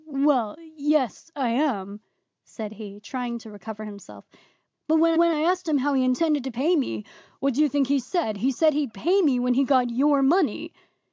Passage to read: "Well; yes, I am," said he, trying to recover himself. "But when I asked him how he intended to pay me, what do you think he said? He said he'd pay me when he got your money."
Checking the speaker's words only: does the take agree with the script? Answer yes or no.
no